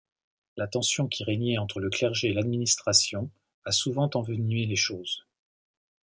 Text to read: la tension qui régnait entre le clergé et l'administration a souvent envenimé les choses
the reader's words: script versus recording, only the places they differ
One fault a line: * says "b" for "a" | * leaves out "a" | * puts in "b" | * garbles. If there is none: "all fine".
all fine